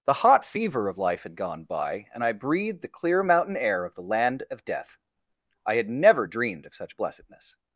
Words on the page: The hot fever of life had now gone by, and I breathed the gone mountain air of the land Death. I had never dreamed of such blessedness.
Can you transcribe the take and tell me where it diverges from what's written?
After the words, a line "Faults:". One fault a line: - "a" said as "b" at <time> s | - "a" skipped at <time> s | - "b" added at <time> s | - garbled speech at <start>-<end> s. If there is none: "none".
The hot fever of life had gone by, and I breathed the clear mountain air of the land of Death. I had never dreamed of such blessedness.
Faults:
- "now" skipped at 1.3 s
- "gone" said as "clear" at 2.9 s
- "of" added at 4.5 s